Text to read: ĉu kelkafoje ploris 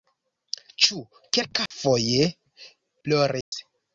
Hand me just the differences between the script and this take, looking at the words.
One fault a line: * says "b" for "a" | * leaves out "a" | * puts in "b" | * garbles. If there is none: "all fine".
all fine